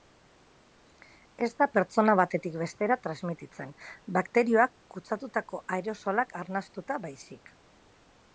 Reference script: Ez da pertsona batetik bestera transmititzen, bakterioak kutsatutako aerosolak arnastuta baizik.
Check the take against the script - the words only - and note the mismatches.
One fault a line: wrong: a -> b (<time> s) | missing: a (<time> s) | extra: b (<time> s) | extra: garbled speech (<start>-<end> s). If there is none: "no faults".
no faults